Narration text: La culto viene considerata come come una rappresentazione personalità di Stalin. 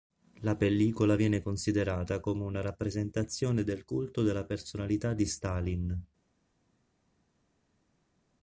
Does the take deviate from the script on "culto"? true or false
true